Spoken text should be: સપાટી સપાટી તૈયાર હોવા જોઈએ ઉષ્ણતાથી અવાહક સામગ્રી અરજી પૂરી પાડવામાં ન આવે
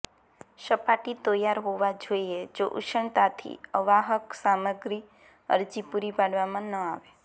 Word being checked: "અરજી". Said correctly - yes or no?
yes